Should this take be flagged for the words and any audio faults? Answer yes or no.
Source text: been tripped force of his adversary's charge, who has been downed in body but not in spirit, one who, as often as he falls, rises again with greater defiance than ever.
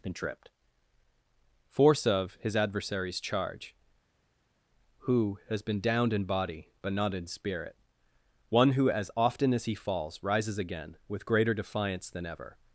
no